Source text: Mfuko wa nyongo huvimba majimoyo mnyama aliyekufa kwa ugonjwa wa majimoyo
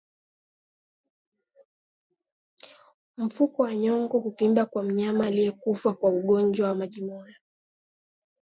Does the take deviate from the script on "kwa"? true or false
false